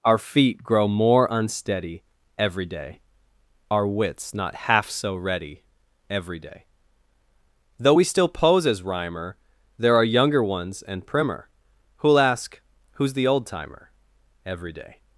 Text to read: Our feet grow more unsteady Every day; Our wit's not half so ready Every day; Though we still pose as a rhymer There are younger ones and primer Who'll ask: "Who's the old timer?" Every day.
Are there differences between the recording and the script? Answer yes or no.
yes